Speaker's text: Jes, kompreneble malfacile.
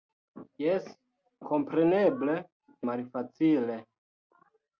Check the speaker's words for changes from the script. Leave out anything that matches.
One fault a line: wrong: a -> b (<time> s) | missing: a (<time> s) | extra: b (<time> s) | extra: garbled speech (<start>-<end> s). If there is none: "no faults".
no faults